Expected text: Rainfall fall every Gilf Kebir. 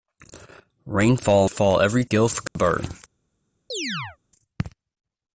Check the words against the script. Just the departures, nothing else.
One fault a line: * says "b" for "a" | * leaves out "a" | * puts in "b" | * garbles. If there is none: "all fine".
all fine